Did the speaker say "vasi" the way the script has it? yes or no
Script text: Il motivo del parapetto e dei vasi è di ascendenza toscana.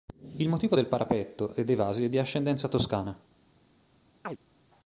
yes